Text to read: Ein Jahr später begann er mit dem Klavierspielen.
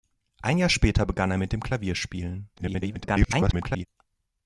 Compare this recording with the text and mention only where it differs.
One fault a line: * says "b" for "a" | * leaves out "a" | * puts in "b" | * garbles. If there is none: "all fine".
* garbles